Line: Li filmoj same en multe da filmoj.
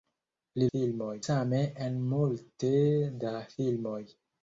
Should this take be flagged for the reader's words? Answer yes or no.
no